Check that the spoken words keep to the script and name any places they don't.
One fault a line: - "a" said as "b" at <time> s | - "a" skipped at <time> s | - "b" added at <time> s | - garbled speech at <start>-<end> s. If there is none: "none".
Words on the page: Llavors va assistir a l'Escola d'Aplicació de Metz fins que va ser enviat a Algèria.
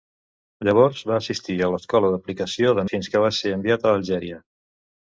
- "Metz" skipped at 2.9 s